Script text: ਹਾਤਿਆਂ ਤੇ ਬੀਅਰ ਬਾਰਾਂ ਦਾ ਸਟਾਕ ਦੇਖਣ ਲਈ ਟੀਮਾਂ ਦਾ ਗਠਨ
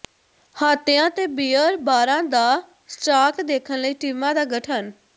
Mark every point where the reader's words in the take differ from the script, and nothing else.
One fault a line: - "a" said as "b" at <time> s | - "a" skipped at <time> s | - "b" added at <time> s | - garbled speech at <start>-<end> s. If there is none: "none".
none